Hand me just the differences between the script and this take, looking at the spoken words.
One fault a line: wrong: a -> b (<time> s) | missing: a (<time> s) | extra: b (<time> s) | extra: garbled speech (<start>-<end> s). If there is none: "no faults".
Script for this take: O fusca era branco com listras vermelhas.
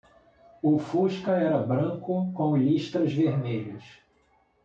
no faults